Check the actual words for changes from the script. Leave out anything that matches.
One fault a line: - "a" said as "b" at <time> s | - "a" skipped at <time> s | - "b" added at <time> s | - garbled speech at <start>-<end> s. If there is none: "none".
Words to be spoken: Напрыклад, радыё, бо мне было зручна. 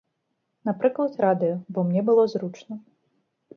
none